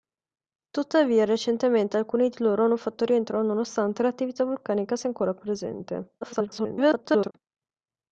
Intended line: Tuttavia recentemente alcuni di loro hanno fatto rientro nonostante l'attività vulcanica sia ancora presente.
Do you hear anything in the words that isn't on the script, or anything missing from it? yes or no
yes